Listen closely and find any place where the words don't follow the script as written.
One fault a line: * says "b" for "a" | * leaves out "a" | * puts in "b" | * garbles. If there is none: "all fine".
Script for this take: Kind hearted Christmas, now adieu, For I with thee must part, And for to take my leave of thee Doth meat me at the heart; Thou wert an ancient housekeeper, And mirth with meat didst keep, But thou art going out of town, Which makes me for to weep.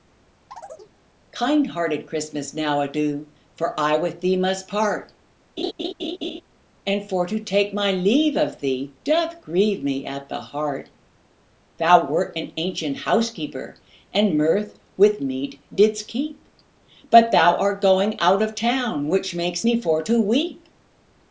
* says "grieve" for "meat"